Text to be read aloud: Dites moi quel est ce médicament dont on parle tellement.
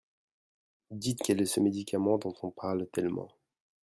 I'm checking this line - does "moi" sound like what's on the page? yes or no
no